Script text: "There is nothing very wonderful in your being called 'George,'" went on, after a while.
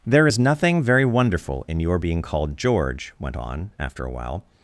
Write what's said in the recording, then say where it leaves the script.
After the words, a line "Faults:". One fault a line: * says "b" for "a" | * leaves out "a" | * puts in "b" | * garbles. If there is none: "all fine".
"There is nothing very wonderful in your being called 'George,'" went on, after a while.
Faults:
all fine